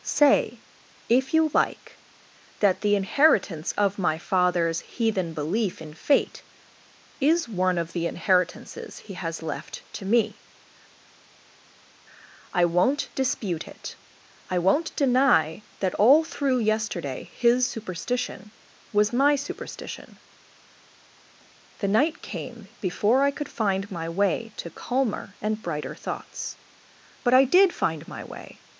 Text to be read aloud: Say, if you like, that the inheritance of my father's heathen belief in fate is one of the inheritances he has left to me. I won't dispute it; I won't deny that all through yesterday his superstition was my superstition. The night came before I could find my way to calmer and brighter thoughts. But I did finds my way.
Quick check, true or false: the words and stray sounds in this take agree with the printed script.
false